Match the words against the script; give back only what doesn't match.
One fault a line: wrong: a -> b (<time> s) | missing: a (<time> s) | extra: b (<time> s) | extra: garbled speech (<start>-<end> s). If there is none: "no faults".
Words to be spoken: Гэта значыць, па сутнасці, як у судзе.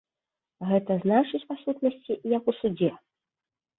no faults